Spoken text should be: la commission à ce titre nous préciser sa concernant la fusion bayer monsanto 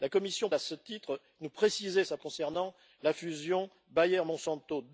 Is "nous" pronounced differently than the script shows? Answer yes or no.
no